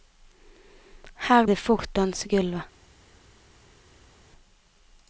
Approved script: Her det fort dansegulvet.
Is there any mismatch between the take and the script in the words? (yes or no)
no